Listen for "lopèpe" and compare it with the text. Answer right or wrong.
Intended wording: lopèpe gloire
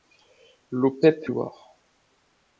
right